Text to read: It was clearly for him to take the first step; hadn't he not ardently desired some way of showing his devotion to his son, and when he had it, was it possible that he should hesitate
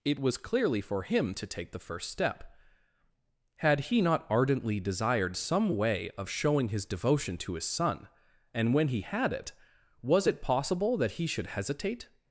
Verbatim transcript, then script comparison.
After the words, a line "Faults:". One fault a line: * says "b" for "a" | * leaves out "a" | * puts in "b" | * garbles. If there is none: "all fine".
It was clearly for him to take the first step; had he not ardently desired some way of showing his devotion to his son, and when he had it, was it possible that he should hesitate
Faults:
* says "had" for "hadn't"